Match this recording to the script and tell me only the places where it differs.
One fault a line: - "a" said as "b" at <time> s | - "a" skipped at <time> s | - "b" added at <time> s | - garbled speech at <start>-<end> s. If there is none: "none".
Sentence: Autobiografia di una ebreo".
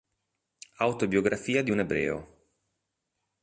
- "una" said as "un" at 1.7 s